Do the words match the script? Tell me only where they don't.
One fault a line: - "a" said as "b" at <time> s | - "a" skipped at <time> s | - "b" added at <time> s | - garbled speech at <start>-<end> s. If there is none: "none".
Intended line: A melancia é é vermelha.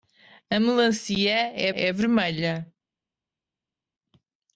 none